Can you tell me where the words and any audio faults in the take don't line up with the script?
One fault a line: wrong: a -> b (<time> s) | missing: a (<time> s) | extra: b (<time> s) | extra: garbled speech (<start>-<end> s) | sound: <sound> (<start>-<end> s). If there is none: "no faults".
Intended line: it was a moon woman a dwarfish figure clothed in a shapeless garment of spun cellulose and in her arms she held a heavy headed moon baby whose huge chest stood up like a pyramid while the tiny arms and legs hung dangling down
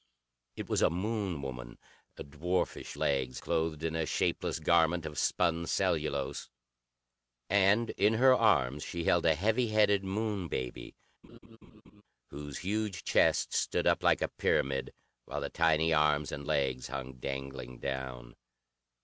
wrong: figure -> legs (3.0 s)
sound: laugh (11.2-12.0 s)